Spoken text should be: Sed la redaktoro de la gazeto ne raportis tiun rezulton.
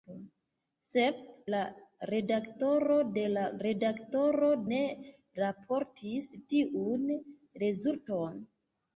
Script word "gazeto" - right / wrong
wrong